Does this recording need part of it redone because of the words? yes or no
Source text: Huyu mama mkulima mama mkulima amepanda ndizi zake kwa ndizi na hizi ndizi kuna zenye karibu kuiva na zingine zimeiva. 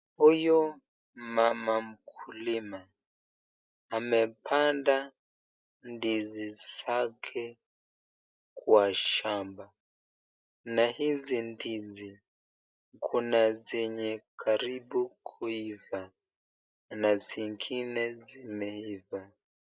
yes